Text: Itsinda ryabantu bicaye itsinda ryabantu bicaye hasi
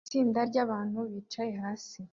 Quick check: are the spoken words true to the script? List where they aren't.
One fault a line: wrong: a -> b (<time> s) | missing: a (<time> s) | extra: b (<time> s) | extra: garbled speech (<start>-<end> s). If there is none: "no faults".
missing: itsinda ryabantu bicaye (1.5 s)